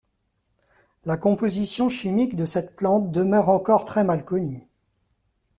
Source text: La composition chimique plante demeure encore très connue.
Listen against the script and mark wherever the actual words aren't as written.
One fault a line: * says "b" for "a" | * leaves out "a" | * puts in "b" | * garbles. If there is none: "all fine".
* puts in "de cette"
* puts in "mal"